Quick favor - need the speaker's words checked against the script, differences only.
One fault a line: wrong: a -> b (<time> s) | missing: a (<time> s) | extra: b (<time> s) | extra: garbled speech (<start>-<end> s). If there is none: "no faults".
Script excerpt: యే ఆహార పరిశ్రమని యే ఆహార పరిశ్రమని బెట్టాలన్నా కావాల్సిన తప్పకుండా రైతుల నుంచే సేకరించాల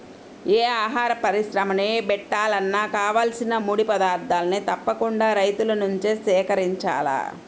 wrong: యే ఆహార పరిశ్రమని బెట్టాలన్నా కావాల్సిన -> బెట్టాలన్నా కావాల్సిన ముడి పదార్థాల్ని (2.0 s)